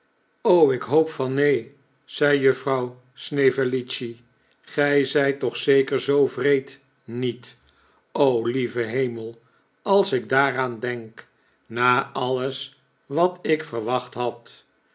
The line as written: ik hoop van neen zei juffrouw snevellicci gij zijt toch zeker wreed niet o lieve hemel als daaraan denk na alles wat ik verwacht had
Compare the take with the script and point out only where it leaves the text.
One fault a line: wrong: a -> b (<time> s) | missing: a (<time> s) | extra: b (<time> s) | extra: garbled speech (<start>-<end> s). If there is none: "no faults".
extra: zoo (6.0 s)
extra: ik (10.1 s)